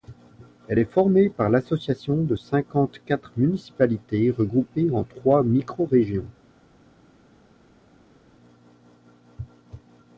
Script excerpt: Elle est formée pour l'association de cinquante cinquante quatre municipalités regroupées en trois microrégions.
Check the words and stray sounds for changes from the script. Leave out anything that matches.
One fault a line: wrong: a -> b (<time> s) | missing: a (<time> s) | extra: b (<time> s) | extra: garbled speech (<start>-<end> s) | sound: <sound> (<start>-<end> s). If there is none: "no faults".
wrong: pour -> par (1.3 s)
missing: cinquante (3.0 s)